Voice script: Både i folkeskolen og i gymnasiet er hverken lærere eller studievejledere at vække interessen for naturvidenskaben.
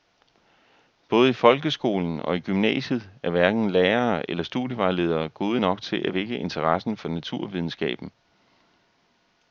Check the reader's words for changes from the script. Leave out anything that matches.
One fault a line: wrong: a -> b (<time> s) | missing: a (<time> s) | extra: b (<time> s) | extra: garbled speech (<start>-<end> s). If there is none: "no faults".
extra: gode nok til (5.3 s)